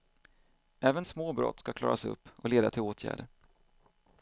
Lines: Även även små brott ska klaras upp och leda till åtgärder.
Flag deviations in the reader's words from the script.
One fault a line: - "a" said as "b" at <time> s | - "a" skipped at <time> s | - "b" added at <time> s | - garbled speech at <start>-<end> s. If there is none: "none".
- "även" skipped at 1.1 s